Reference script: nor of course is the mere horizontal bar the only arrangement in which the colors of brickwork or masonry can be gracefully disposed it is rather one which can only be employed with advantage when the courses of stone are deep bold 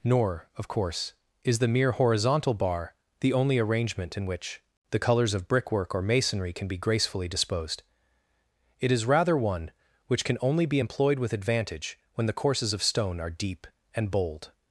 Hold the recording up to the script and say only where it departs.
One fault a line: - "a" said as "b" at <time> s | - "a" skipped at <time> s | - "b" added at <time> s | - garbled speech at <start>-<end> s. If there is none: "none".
- "and" added at 13.9 s